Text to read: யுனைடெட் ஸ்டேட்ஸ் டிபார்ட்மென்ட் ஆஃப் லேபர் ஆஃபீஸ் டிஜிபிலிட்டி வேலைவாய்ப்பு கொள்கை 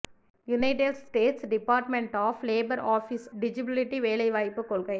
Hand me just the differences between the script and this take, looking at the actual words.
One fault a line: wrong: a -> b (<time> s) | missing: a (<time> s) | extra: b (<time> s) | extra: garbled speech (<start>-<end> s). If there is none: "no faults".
no faults